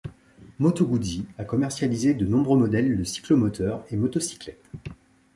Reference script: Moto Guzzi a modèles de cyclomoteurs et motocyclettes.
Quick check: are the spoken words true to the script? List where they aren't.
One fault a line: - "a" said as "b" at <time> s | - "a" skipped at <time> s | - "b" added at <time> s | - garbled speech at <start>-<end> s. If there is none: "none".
- "commercialisé de nombreux" added at 1.4 s